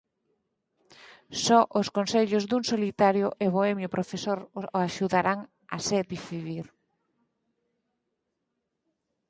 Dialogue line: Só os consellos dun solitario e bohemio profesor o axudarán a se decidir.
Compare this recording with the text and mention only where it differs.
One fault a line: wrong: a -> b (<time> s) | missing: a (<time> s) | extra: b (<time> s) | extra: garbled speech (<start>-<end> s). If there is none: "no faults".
no faults